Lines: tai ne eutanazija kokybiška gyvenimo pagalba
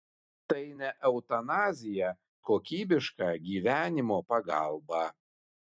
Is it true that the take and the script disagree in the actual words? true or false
false